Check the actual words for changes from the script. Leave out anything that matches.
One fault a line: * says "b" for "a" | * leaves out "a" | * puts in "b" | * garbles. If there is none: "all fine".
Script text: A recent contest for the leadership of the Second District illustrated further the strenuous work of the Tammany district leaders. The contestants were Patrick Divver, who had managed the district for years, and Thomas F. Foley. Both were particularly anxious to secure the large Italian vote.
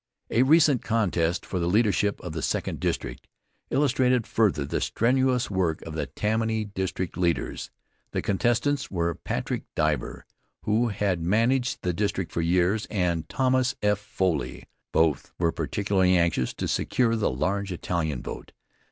all fine